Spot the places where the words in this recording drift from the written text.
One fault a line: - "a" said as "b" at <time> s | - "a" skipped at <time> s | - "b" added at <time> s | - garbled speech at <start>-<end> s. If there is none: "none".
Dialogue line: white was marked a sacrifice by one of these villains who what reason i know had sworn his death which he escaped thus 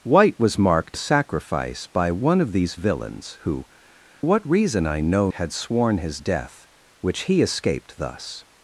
none